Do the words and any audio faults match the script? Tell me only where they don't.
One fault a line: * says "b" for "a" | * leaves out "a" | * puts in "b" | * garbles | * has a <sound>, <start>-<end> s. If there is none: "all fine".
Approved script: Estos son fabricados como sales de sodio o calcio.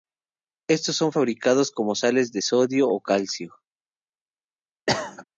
* has a cough, 4.9-5.2 s